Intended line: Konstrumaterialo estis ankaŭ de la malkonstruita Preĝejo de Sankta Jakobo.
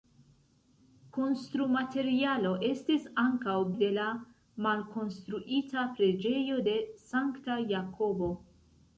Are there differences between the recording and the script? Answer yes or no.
no